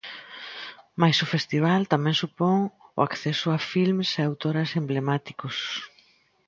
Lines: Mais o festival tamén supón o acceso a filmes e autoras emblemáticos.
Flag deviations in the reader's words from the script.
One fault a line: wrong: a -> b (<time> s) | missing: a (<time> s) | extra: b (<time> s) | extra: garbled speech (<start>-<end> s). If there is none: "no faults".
no faults